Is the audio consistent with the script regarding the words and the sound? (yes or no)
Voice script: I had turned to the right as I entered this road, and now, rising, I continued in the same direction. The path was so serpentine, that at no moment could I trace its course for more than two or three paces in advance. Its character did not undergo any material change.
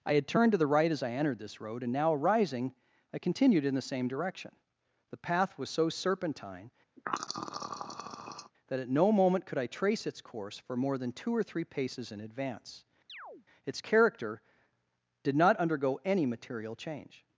no